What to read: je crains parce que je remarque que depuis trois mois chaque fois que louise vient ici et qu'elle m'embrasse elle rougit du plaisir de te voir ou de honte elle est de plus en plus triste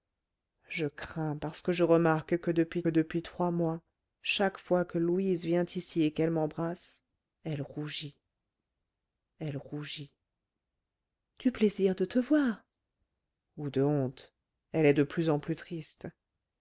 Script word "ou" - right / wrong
right